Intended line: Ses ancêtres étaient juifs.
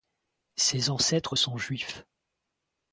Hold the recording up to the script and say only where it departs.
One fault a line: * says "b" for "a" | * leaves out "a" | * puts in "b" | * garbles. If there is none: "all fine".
* says "sont" for "étaient"